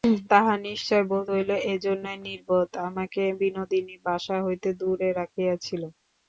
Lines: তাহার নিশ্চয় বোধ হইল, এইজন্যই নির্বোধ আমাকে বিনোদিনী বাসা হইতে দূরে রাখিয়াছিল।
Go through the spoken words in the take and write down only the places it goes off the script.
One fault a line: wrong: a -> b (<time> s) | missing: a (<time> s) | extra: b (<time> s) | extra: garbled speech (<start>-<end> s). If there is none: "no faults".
no faults